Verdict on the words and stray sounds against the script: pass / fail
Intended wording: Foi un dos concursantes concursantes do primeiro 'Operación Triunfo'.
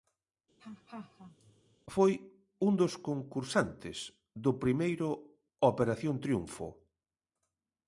fail